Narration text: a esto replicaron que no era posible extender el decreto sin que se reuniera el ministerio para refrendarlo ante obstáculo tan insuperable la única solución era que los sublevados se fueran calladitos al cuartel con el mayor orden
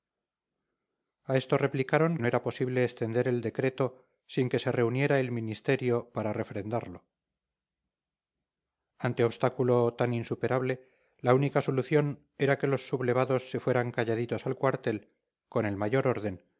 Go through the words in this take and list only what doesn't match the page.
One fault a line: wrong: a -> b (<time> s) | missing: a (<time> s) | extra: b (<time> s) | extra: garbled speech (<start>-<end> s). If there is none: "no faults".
missing: que (2.2 s)